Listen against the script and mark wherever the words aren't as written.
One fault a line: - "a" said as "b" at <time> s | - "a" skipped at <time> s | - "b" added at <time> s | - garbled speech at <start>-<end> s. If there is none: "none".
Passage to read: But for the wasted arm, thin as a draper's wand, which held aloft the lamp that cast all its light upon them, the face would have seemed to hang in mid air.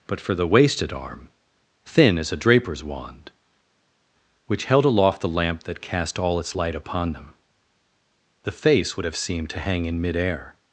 none